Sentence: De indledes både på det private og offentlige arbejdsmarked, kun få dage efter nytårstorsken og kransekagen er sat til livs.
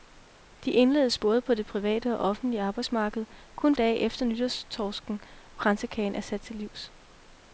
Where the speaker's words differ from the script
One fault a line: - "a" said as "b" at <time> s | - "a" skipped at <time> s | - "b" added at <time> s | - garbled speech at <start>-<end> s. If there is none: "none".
- "få" skipped at 3.8 s
- "og" skipped at 5.2 s